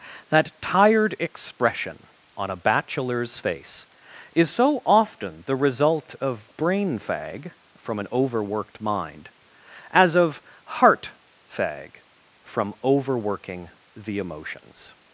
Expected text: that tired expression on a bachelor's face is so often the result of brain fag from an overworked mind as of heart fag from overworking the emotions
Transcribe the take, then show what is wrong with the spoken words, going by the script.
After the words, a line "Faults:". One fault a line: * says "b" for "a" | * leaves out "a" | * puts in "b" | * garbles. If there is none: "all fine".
that tired expression on a bachelor's face is so often the result of brain fag from an overworked mind as of heart fag from overworking the emotions
Faults:
all fine